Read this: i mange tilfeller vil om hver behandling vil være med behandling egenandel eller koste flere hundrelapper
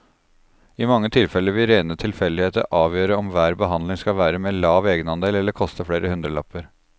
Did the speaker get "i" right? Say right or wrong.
right